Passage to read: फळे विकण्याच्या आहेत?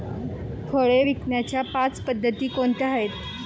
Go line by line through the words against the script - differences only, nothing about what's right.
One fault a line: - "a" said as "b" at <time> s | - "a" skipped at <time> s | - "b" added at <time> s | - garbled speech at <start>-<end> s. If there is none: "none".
- "पाच पद्धती कोणत्या" added at 1.7 s